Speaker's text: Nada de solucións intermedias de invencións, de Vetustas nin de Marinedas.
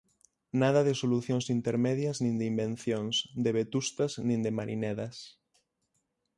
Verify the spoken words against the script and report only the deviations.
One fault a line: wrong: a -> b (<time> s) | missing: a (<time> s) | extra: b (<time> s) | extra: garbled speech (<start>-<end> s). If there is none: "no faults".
extra: nin (2.2 s)